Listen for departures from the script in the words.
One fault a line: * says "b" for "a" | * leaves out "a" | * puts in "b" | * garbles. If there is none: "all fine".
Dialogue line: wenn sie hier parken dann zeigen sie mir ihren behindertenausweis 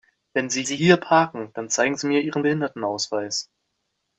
* puts in "sie"